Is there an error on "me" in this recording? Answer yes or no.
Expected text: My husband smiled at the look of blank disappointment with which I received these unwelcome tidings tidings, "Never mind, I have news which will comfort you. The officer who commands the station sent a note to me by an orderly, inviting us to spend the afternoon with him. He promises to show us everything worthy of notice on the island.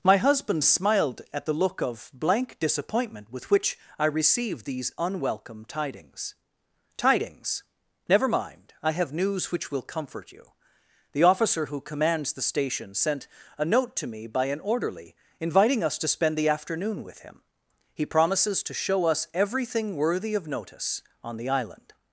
no